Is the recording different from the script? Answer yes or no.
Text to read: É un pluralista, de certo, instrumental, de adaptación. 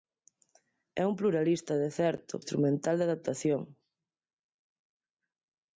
no